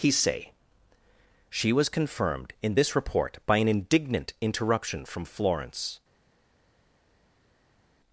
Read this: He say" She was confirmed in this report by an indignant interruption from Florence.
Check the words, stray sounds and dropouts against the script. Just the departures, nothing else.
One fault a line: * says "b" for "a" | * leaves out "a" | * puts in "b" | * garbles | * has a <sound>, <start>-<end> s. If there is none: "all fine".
all fine